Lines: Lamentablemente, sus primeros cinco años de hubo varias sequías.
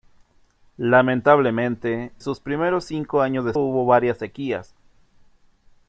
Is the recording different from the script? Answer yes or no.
no